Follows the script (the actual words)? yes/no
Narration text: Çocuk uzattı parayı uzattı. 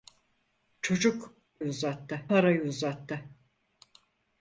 yes